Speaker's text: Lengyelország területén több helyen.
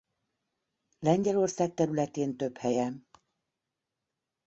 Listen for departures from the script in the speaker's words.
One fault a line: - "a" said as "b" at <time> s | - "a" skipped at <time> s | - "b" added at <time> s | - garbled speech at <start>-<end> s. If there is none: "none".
none